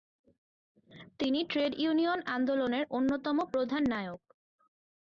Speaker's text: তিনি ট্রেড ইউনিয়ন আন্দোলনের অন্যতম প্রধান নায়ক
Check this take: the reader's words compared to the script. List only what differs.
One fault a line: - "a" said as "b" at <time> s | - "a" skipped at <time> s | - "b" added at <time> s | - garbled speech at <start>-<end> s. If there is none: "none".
none